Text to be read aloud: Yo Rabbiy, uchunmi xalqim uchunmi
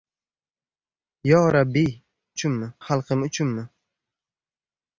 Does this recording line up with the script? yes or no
yes